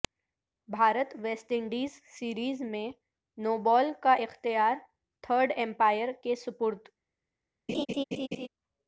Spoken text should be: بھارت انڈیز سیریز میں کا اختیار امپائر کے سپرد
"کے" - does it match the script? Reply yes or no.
yes